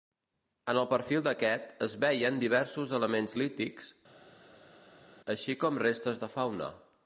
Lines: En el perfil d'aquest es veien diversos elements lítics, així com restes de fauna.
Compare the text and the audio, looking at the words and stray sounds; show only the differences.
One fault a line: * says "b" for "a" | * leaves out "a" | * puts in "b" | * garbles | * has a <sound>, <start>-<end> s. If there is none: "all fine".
all fine